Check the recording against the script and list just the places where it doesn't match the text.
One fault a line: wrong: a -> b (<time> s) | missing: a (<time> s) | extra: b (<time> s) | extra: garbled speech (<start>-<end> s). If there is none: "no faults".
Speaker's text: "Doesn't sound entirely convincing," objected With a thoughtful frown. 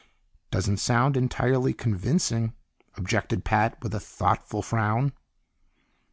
extra: Pat (3.5 s)